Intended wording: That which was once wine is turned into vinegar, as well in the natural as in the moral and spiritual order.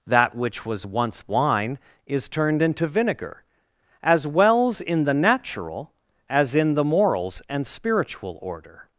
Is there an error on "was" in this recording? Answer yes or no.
no